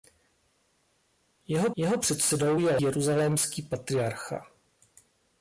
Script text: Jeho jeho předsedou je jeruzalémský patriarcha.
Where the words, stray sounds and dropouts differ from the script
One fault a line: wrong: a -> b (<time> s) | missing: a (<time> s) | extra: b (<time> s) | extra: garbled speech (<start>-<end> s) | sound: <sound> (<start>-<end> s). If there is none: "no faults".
no faults